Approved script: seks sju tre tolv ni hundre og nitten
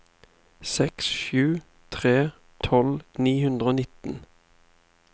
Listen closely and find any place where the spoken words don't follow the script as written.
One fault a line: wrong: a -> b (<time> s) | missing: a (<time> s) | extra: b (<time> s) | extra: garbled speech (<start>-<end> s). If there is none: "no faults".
no faults